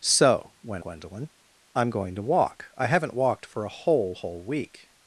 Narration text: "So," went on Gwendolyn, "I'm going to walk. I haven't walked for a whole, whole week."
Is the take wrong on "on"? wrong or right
wrong